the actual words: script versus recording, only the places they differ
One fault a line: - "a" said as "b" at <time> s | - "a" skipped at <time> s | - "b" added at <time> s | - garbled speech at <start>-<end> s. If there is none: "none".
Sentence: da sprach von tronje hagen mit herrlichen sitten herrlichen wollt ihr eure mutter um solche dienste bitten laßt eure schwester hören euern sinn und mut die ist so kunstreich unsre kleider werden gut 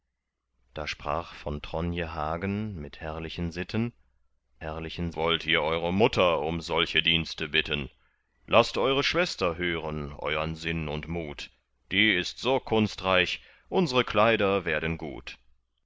none